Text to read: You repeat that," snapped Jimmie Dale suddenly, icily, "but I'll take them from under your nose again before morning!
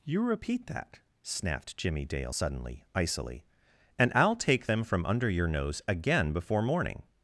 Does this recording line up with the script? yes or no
no